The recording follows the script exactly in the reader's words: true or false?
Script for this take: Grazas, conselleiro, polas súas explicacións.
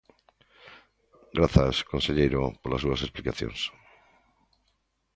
true